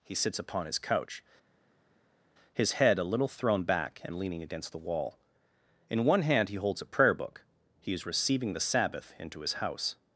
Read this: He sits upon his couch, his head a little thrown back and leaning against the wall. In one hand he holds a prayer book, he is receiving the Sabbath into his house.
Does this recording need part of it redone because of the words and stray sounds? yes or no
no